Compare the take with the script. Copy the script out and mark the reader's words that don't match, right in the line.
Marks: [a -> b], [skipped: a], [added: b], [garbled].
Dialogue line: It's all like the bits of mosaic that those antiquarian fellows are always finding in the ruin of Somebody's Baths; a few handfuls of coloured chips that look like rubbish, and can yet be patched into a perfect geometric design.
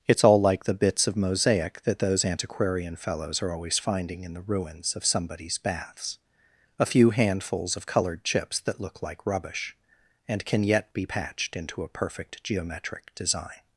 It's all like the bits of mosaic that those antiquarian fellows are always finding in the [ruin -> ruins] of Somebody's Baths; a few handfuls of coloured chips that look like rubbish, and can yet be patched into a perfect geometric design.